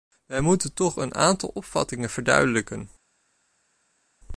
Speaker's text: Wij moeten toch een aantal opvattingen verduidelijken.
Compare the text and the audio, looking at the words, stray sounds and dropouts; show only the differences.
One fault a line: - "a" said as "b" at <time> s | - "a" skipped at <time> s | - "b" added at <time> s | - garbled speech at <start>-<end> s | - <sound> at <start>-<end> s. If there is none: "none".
none